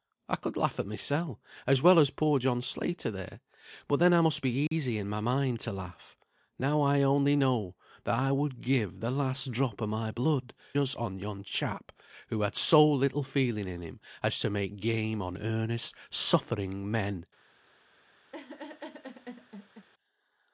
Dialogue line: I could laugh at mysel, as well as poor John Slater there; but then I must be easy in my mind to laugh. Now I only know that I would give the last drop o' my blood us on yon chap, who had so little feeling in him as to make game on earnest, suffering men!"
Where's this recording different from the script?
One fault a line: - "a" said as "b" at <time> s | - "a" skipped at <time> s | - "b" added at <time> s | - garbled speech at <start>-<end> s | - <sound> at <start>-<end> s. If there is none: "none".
- dropout at 4.7-4.7 s
- laugh at 18.3-19.9 s